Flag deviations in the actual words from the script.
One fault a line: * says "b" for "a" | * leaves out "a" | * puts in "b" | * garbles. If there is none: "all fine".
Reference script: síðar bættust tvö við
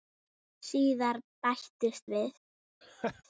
* leaves out "tvö"